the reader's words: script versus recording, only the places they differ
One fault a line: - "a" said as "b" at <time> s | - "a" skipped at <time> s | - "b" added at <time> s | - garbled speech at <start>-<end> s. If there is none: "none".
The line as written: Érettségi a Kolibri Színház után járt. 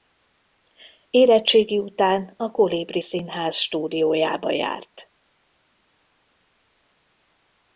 - "után" added at 1.8 s
- "után" said as "stúdiójába" at 3.5 s